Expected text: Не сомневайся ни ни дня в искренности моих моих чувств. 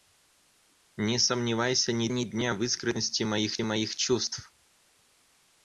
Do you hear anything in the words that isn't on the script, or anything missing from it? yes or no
no